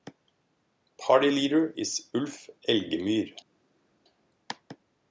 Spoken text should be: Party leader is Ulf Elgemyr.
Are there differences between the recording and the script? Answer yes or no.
no